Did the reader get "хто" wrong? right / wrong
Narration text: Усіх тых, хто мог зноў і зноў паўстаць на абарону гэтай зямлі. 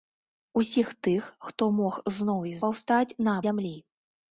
right